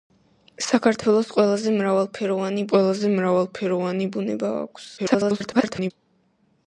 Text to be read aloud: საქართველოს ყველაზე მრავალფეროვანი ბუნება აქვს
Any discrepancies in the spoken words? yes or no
yes